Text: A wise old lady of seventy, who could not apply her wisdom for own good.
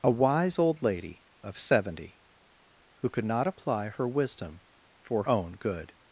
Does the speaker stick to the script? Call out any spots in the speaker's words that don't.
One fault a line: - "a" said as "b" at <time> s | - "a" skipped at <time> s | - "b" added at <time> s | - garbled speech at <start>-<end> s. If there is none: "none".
none